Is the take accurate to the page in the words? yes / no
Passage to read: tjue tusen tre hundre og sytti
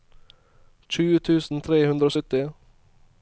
yes